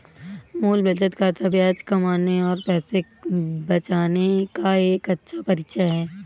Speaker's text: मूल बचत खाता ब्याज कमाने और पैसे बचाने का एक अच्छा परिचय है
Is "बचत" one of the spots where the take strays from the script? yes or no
no